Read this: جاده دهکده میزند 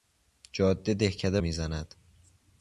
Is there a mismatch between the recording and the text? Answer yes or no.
no